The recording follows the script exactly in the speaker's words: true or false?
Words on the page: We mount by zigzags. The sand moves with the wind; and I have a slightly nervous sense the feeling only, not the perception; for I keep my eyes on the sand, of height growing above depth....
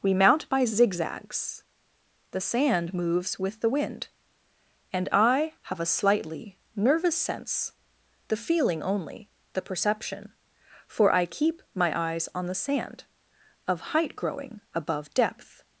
false